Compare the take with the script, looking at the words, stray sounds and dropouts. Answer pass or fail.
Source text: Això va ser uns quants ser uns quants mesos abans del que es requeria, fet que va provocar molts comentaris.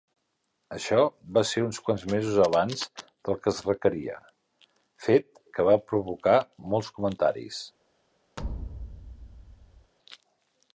fail